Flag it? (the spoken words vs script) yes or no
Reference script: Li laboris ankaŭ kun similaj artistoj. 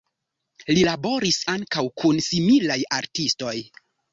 no